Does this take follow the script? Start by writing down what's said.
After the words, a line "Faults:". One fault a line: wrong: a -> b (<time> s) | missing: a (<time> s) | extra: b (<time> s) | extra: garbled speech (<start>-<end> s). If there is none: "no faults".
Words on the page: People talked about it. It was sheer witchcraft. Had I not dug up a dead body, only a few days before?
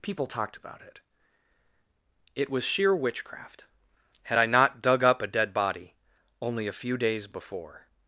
People talked about it. It was sheer witchcraft. Had I not dug up a dead body, only a few days before?
Faults:
no faults